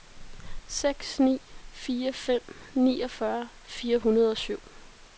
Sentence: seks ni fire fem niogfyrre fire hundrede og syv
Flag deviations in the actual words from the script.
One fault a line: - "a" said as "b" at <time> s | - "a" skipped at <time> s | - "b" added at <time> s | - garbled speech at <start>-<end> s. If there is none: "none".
none